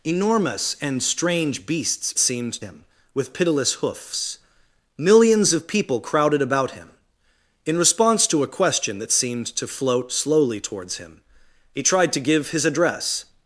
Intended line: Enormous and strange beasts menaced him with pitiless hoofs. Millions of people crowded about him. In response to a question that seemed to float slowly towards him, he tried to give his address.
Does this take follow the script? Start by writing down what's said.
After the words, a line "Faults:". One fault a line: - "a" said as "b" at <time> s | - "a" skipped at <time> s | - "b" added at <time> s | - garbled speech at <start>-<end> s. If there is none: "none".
Enormous and strange beasts seemed him with pitiless hoofs. Millions of people crowded about him. In response to a question that seemed to float slowly towards him, he tried to give his address.
Faults:
- "menaced" said as "seemed" at 2.2 s